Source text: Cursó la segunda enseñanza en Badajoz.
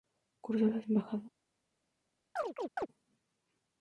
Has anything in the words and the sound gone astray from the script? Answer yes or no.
yes